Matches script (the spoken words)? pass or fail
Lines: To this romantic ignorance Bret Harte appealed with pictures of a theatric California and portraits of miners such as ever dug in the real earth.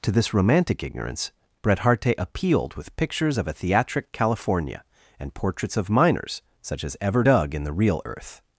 pass